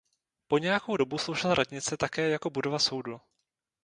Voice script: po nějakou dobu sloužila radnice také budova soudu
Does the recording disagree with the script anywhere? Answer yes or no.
yes